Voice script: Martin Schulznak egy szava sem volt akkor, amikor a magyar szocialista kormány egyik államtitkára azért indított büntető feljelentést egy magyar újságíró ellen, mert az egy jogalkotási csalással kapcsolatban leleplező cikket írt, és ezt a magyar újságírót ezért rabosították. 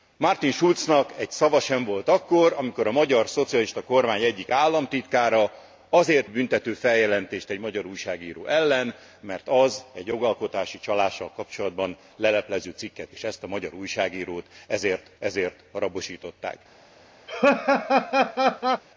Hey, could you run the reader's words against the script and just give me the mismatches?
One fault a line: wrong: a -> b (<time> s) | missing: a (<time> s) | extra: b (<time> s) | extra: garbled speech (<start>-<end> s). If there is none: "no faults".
missing: indított (6.3 s)
missing: írt (13.1 s)
extra: ezért (15.2 s)